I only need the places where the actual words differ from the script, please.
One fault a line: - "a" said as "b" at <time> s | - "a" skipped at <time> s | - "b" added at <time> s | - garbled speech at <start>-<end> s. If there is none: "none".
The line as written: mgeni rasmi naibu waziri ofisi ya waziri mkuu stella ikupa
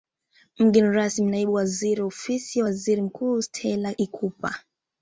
none